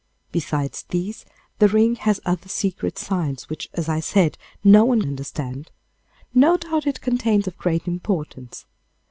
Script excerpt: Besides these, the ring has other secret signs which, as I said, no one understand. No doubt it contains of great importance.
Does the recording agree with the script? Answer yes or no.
yes